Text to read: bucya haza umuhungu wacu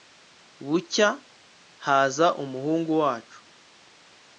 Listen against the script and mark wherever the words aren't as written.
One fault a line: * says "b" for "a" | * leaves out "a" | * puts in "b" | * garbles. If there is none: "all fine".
all fine